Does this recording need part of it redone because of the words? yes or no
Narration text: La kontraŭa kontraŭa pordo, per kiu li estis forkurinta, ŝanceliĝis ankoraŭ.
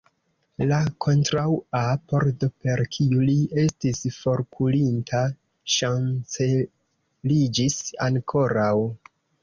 yes